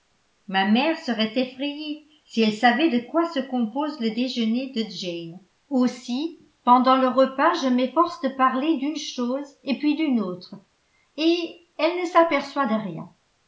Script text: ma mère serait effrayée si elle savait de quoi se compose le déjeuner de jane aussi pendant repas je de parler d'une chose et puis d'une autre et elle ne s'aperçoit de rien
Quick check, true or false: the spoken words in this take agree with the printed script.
false